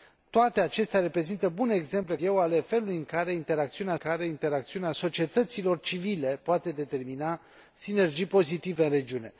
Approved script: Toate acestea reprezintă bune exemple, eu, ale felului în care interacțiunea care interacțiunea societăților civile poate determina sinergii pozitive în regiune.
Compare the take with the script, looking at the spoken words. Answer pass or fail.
pass